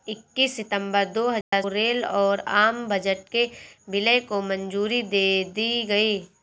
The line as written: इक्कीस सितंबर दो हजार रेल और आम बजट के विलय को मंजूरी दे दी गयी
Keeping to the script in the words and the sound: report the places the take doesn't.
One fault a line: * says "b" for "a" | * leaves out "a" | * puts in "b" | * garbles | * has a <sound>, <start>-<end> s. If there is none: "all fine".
* has a dropout, 1.4-1.5 s